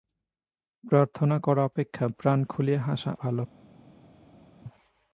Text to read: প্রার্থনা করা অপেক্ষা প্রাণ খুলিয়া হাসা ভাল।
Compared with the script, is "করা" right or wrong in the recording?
right